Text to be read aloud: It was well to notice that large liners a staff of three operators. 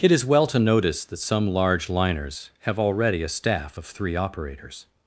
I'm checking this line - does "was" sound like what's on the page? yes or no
no